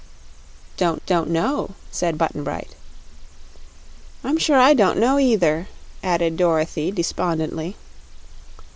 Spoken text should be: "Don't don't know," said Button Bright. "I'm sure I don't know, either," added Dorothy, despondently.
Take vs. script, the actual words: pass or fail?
pass